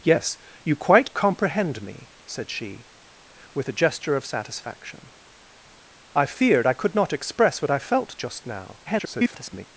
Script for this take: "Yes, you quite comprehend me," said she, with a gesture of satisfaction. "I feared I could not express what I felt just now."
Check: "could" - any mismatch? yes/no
no